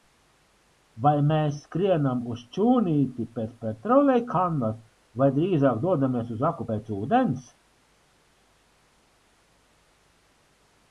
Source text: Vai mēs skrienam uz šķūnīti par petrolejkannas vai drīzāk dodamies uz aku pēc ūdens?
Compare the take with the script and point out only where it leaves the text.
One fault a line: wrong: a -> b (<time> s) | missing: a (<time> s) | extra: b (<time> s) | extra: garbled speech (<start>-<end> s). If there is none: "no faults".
wrong: par -> pēc (3.4 s)